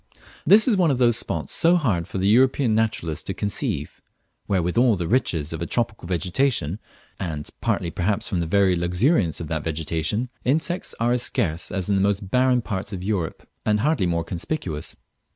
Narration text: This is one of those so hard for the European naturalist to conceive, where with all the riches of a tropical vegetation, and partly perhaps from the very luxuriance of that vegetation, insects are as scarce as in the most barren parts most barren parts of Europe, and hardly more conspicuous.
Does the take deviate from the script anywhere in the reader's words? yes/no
yes